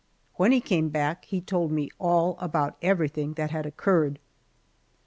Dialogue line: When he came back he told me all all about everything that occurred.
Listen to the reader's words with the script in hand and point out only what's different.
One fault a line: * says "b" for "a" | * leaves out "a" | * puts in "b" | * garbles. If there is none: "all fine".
* leaves out "all"
* puts in "had"